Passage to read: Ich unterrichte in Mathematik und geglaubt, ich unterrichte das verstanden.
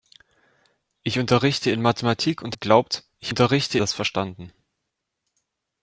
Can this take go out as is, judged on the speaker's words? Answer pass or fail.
pass